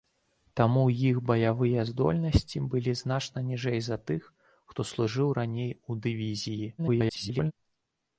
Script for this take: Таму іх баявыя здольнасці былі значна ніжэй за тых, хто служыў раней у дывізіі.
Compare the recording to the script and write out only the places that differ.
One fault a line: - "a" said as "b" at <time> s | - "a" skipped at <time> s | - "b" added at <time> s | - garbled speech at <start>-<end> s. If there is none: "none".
- garbled speech at 6.8-7.5 s